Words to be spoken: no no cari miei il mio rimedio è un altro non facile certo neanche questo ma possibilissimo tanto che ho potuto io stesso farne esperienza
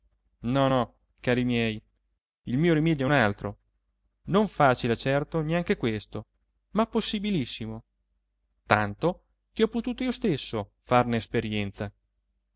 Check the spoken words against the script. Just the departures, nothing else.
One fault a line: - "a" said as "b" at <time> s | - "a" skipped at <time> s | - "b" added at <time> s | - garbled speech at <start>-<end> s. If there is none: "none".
none